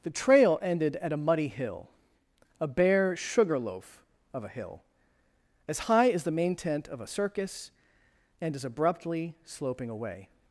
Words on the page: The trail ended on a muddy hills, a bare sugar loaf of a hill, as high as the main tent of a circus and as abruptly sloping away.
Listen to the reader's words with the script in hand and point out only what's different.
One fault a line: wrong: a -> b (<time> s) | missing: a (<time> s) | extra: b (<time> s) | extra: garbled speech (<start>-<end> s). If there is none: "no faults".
wrong: on -> at (0.9 s)
wrong: hills -> hill (1.5 s)